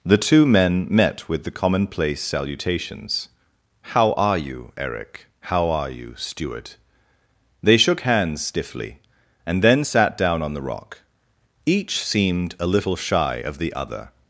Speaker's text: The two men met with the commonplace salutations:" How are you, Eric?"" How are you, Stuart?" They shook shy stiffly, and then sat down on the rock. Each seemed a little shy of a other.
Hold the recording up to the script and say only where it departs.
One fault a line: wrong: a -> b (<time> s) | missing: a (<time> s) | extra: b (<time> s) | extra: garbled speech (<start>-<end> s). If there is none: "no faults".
wrong: shy -> hands (8.0 s)
wrong: a -> the (13.6 s)